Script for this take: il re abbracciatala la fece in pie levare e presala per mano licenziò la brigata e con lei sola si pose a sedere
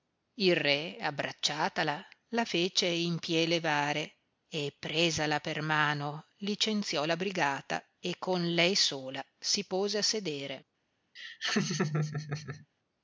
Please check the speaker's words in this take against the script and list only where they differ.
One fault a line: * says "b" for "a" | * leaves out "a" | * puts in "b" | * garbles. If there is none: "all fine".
all fine